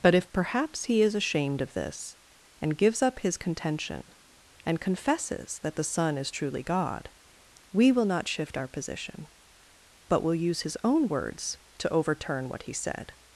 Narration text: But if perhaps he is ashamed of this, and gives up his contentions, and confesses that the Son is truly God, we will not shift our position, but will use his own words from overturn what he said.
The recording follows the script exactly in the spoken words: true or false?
false